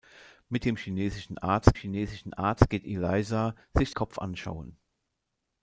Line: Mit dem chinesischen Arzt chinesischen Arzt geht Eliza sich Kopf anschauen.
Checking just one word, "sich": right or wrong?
right